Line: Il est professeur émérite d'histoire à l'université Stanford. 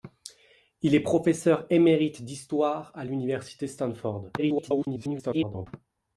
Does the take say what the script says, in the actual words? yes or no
no